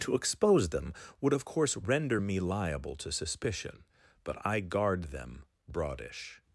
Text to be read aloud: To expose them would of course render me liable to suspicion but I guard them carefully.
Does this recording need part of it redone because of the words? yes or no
yes